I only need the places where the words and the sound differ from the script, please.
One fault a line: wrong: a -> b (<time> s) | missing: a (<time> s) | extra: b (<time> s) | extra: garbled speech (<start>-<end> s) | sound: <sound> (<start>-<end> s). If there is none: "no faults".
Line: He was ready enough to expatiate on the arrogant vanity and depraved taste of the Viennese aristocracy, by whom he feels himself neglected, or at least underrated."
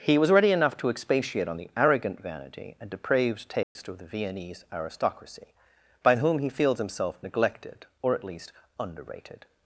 sound: dropout (3.6-3.8 s)